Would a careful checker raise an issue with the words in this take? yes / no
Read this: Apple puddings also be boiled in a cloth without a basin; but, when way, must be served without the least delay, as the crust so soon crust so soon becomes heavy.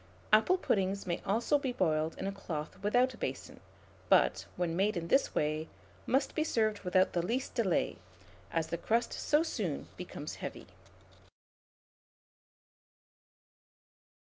yes